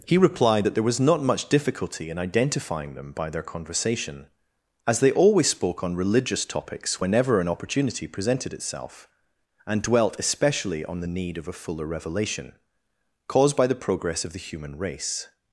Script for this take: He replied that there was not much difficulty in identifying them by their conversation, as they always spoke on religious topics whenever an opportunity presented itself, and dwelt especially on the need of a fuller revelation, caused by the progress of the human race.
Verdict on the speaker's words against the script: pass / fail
pass